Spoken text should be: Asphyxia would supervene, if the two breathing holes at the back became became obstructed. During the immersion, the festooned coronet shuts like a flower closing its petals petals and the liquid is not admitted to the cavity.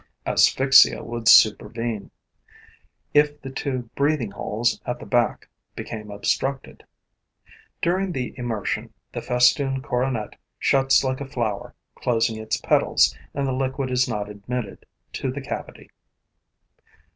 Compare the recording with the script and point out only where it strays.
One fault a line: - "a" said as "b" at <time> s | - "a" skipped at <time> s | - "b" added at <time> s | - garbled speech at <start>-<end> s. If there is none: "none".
- "became" skipped at 6.1 s
- "petals" skipped at 13.1 s